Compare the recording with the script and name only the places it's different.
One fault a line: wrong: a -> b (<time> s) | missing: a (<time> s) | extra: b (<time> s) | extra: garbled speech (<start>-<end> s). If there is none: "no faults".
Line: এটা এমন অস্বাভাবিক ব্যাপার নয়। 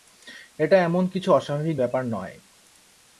extra: কিছু (1.1 s)